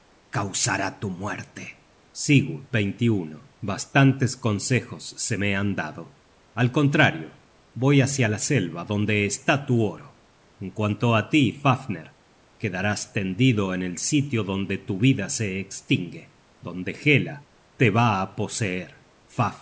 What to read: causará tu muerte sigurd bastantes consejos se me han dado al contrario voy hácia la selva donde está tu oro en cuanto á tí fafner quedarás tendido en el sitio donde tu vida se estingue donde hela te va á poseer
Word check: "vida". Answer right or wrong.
right